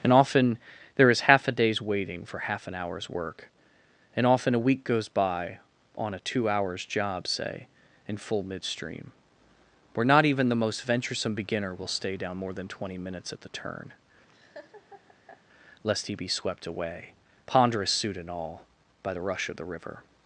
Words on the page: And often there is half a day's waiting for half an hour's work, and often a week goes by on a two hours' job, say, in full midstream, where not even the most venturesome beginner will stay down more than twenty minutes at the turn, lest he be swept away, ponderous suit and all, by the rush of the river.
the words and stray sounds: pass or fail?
fail